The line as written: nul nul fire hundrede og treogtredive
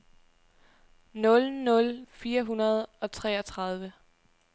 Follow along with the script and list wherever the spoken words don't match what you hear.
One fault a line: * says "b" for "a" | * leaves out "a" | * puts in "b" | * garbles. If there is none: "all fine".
all fine